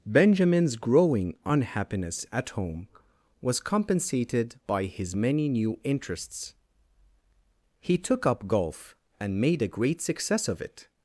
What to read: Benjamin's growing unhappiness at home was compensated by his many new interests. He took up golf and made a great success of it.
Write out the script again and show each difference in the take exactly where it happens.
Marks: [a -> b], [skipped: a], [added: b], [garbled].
Benjamin's growing unhappiness at home was compensated by his many new interests. He took up golf and made a great success of it.